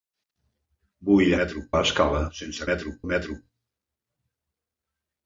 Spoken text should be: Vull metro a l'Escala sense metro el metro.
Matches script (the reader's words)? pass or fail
pass